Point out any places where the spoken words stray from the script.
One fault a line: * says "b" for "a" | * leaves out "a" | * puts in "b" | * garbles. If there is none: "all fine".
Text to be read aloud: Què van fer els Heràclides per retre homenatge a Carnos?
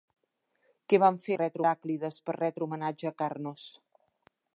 * says "retre" for "els"